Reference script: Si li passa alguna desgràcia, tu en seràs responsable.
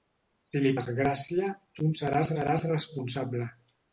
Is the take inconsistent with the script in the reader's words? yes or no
yes